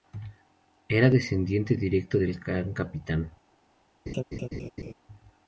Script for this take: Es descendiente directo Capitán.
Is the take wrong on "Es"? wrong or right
wrong